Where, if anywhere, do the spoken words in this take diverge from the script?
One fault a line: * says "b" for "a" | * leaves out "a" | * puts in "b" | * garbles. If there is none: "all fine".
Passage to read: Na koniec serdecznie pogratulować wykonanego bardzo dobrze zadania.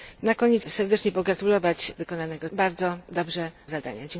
all fine